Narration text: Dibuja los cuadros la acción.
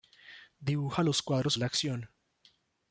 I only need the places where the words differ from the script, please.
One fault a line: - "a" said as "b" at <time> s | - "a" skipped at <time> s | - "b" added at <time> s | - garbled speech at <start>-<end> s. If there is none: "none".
none